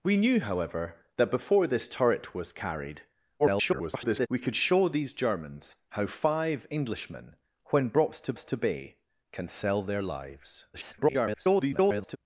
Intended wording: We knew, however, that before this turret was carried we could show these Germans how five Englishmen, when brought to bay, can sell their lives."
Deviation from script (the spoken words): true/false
true